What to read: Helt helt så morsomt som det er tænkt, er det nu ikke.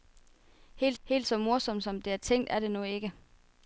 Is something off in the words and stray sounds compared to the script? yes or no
no